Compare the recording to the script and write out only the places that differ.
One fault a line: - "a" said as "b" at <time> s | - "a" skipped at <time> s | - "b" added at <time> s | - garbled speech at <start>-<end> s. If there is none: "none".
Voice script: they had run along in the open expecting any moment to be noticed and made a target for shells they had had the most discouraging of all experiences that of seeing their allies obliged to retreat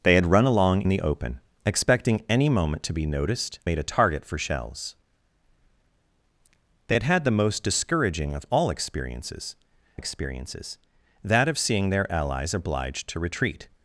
- "in" skipped at 0.8 s
- "and" skipped at 3.6 s
- "experiences" added at 9.9 s